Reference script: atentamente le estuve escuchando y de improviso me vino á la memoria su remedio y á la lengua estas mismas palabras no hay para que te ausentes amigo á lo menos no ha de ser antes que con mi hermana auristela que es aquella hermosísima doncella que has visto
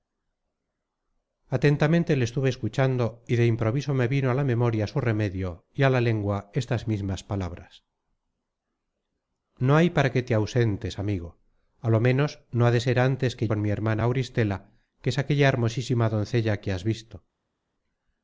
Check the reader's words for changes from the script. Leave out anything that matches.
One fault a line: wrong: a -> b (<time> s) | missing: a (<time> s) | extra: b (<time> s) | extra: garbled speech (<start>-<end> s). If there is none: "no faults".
no faults